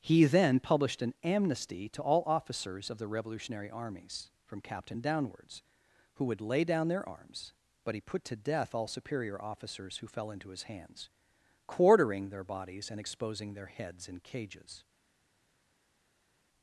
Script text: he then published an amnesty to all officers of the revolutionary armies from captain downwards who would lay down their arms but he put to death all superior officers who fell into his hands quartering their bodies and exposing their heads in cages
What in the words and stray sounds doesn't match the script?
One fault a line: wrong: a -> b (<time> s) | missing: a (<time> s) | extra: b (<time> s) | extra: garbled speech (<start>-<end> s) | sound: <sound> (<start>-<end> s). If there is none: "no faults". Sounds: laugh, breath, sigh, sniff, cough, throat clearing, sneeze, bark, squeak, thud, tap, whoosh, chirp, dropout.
no faults